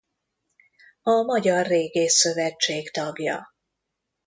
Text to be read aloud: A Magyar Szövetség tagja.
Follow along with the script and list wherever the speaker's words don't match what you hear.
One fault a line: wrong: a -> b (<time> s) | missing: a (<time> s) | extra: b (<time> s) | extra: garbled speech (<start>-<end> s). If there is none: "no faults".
extra: Régész (1.6 s)